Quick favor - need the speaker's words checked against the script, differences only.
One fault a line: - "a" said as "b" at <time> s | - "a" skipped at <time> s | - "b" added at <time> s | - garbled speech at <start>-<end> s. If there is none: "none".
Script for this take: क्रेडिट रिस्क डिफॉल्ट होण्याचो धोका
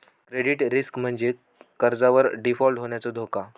- "म्हणजे कर्जावर" added at 1.0 s